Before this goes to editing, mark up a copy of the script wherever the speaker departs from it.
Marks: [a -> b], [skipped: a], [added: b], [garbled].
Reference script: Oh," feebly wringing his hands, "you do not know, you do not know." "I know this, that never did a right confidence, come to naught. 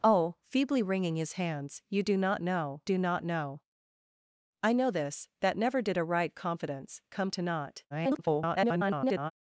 Oh," feebly wringing his hands, "you do not know, [skipped: you] do not know." "I know this, that never did a right confidence, come to naught. [garbled]